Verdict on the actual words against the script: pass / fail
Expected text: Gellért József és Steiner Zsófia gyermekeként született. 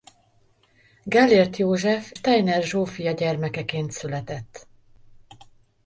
fail